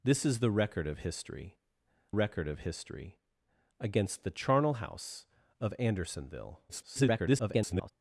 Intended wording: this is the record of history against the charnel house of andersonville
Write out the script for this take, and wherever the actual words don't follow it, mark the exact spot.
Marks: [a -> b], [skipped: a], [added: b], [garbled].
this is the record of history [added: record of history] against the charnel house of andersonville [garbled]